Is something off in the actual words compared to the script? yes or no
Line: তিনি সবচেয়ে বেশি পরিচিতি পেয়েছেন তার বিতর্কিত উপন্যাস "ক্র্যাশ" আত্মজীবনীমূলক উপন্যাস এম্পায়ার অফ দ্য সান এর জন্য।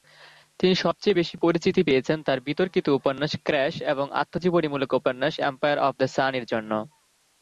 yes